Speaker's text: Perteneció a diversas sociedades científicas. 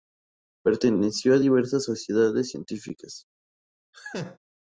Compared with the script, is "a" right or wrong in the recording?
right